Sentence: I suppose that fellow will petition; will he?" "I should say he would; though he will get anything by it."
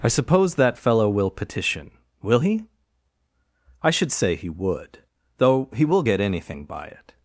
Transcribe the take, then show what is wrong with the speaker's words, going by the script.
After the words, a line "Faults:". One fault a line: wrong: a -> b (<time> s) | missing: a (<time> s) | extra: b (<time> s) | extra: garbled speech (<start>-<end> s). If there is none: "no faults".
I suppose that fellow will petition; will he?" "I should say he would; though he will get anything by it."
Faults:
no faults